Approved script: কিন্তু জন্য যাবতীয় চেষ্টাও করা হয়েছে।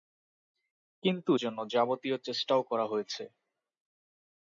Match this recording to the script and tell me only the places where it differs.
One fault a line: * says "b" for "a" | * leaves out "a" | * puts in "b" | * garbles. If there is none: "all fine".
all fine